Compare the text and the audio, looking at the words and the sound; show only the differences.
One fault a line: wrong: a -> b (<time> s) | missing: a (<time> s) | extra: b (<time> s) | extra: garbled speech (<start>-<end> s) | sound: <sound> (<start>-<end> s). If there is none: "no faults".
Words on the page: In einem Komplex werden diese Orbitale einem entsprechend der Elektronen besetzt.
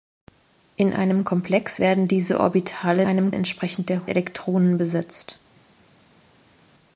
no faults